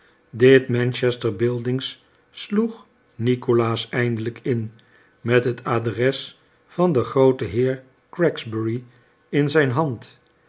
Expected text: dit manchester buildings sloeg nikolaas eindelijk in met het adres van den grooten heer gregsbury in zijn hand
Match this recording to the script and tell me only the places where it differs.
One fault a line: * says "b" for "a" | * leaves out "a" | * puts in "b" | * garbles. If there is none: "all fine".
all fine